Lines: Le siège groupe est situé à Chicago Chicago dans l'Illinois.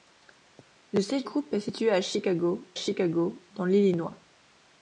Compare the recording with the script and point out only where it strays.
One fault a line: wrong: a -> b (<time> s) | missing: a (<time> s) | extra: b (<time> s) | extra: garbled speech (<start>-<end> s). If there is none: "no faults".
no faults